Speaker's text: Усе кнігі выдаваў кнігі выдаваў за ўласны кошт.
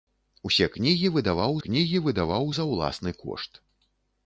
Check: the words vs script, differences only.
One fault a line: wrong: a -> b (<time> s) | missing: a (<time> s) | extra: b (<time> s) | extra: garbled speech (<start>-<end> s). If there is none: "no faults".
no faults